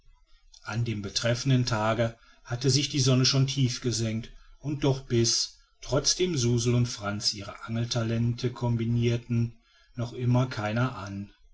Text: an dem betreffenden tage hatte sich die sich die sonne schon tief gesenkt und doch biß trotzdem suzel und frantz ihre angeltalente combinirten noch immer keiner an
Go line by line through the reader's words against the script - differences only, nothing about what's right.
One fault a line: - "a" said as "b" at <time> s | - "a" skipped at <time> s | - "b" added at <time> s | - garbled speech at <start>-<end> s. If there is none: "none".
- "sich die" skipped at 3.0 s